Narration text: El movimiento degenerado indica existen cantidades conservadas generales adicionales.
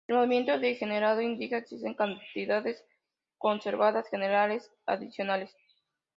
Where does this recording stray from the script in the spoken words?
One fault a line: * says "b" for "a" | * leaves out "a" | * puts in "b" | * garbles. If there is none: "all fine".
all fine